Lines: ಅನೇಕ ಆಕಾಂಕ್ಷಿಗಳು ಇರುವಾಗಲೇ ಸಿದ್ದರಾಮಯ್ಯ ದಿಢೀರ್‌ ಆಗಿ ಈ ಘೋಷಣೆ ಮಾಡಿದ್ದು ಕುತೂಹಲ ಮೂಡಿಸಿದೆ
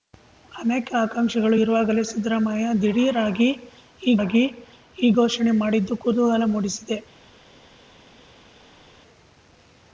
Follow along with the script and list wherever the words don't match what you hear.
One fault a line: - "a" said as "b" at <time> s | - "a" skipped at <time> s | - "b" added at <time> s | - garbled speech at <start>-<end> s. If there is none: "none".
- "ಆಗಿ ಈ" added at 4.2 s